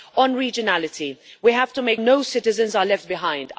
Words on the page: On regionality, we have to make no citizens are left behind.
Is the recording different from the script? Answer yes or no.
no